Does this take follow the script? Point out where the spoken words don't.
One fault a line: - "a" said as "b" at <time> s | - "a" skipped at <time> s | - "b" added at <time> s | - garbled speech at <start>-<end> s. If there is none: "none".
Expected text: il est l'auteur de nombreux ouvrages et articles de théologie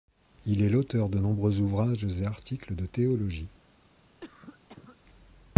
none